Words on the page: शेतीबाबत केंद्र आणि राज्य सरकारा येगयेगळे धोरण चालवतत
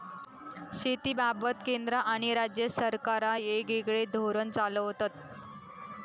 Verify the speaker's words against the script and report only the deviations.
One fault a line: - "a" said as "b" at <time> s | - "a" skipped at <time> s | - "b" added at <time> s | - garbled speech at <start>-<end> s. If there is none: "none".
none